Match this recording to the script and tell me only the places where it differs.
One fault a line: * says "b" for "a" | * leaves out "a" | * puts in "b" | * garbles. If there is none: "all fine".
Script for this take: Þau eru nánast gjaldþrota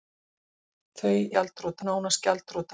* says "gjaldþrota" for "eru"